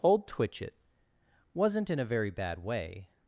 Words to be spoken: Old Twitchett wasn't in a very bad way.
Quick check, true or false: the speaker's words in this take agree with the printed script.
true